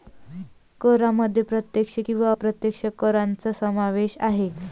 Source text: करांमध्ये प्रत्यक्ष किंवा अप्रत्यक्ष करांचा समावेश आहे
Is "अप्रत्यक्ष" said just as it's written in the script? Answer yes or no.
yes